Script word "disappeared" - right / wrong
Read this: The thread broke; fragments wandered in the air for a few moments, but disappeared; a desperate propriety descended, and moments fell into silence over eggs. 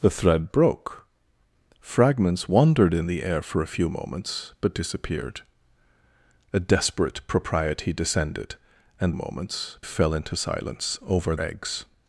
right